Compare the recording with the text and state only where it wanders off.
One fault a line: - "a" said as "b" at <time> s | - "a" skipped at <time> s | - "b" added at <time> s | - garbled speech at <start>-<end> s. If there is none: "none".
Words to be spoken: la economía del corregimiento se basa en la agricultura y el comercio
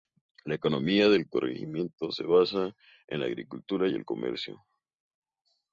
none